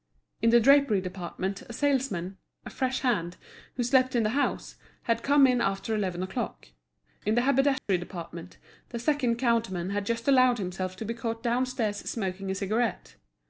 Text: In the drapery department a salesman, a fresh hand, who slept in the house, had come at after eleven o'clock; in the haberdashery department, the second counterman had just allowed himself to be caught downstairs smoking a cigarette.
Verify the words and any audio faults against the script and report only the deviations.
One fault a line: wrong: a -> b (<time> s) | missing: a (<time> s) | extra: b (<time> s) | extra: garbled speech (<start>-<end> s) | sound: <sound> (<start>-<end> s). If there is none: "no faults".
wrong: at -> in (5.5 s)
sound: dropout (7.8-7.9 s)